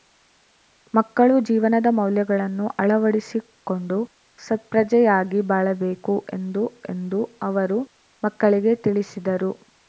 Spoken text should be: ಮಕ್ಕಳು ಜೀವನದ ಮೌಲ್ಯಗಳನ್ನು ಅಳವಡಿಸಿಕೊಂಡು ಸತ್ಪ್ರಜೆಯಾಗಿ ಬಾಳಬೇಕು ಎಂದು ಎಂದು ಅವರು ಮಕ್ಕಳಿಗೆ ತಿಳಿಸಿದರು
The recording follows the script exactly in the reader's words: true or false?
true